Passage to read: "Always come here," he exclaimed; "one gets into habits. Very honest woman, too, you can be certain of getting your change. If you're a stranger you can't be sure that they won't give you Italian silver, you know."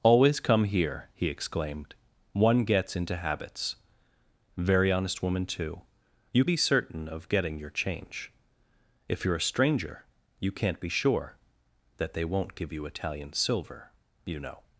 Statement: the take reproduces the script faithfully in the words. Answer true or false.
false